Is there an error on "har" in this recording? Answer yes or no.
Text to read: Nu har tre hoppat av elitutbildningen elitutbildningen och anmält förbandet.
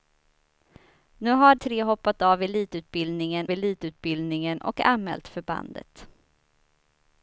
no